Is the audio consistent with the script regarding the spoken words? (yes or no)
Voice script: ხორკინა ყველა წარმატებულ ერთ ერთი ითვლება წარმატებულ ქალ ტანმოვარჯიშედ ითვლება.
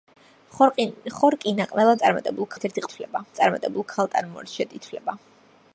yes